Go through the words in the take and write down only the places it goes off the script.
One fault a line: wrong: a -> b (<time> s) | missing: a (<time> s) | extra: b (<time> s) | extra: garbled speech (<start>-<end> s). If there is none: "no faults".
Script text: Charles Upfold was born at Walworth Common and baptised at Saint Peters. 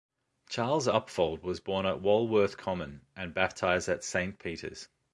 no faults